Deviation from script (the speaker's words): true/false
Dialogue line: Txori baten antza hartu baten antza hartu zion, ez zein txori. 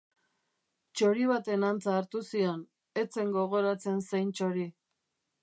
true